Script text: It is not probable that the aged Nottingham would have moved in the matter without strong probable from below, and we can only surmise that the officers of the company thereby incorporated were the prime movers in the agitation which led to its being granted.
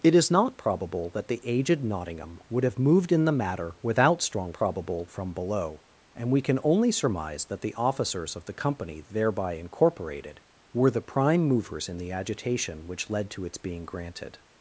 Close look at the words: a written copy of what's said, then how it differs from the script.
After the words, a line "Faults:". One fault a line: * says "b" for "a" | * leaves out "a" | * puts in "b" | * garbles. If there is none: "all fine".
It is not probable that the aged Nottingham would have moved in the matter without strong probable from below, and we can only surmise that the officers of the company thereby incorporated were the prime movers in the agitation which led to its being granted.
Faults:
all fine